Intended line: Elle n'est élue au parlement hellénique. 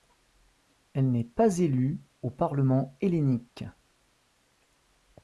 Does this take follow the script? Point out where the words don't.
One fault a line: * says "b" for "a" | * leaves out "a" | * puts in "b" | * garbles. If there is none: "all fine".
* puts in "pas"